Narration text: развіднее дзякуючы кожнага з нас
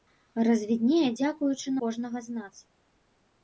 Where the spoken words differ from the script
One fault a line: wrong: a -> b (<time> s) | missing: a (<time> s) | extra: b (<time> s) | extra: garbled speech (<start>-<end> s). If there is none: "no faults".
no faults